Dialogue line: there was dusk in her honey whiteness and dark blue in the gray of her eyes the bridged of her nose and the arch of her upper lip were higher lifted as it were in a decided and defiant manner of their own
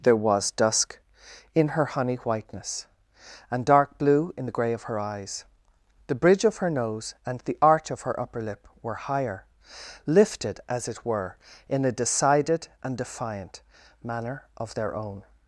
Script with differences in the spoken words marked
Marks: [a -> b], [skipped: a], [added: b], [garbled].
there was dusk in her honey whiteness and dark blue in the gray of her eyes the [bridged -> bridge] of her nose and the arch of her upper lip were higher lifted as it were in a decided and defiant manner of their own